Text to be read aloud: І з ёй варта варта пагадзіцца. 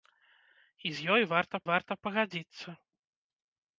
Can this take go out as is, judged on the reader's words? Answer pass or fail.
pass